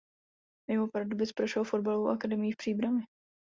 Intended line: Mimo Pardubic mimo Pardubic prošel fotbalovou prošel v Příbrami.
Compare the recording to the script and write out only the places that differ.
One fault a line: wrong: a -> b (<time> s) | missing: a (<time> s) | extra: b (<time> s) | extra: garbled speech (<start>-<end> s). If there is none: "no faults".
missing: mimo Pardubic (1.3 s)
wrong: prošel -> akademií (2.1 s)